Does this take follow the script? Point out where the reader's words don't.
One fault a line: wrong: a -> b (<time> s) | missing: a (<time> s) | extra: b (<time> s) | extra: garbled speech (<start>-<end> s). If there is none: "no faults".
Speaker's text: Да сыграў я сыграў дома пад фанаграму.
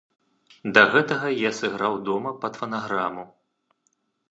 wrong: сыграў -> гэтага (0.9 s)